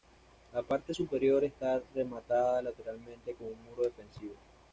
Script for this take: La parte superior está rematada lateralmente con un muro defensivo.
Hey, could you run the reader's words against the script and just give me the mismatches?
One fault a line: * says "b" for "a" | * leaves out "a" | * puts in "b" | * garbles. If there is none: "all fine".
all fine